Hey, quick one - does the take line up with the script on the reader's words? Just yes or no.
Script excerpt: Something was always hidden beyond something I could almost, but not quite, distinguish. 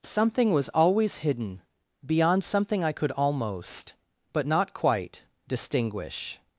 yes